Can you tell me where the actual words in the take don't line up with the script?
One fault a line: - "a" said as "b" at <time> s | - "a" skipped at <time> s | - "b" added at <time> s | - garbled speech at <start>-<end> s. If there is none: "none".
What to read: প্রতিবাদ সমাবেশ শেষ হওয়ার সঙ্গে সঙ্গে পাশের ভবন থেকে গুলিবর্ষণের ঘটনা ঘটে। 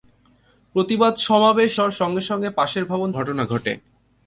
- "শেষ" skipped at 1.7 s
- "থেকে গুলিবর্ষণের" skipped at 3.1 s